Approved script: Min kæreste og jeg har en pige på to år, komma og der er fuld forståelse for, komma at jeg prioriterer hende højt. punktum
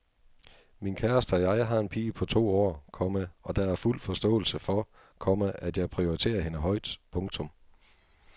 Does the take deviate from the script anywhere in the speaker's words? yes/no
no